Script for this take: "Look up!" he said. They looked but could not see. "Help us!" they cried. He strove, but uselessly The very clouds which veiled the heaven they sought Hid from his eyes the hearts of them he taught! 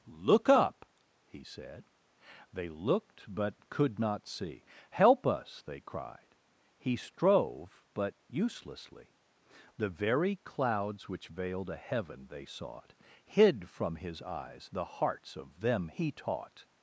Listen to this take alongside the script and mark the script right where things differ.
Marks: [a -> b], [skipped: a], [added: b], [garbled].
"Look up!" he said. They looked but could not see. "Help us!" they cried. He strove, but uselessly The very clouds which veiled [the -> a] heaven they sought Hid from his eyes the hearts of them he taught!